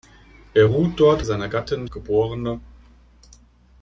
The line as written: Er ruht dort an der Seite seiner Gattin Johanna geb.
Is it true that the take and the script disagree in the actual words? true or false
true